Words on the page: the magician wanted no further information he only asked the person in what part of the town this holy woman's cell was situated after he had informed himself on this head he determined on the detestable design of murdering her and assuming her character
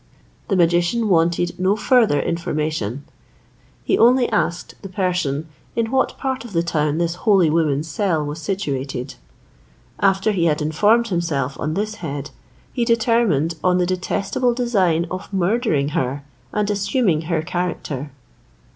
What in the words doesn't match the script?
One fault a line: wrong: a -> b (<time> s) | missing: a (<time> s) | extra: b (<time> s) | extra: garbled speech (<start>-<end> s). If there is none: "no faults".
no faults